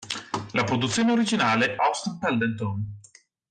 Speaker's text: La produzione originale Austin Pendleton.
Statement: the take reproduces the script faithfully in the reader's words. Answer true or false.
true